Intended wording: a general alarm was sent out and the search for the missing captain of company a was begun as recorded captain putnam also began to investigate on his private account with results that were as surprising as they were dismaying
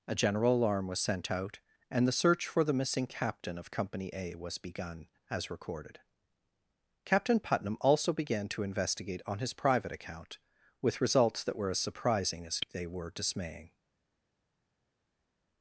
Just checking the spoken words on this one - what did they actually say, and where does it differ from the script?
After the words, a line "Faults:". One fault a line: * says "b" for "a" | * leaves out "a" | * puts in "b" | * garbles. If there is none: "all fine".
a general alarm was sent out and the search for the missing captain of company a was begun as recorded captain putnam also began to investigate on his private account with results that were as surprising as they were dismaying
Faults:
all fine